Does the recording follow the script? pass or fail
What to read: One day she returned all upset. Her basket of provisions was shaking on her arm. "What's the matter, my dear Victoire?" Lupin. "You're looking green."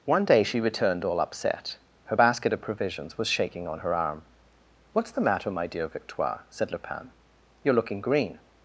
fail